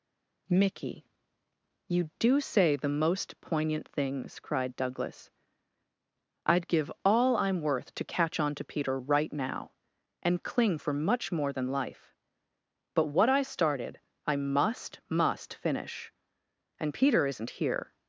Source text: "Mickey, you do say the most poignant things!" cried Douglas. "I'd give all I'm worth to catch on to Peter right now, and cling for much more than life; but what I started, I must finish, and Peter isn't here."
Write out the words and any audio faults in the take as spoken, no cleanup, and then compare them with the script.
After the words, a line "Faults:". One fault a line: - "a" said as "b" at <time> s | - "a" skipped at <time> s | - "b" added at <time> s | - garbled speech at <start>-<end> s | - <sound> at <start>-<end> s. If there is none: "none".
"Mickey, you do say the most poignant things!" cried Douglas. "I'd give all I'm worth to catch on to Peter right now, and cling for much more than life; but what I started, I must must finish, and Peter isn't here."
Faults:
- "must" added at 15.1 s